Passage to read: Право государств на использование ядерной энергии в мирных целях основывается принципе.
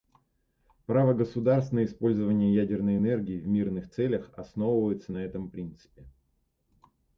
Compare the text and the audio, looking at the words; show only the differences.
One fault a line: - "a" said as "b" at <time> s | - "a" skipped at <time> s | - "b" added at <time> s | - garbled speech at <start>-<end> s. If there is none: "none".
- "на этом" added at 5.1 s